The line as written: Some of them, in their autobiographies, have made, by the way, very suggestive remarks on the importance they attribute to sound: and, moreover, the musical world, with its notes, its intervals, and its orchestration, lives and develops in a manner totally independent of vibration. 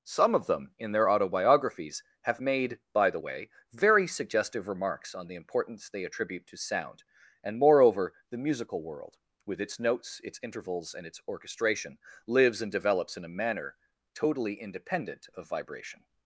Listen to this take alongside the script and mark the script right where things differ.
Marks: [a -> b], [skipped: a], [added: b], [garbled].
Some of them, in their autobiographies, have made, by the way, very suggestive remarks on the importance they attribute to sound: and, moreover, the musical world, with its notes, its intervals, and its orchestration, lives and develops in a manner totally independent of vibration.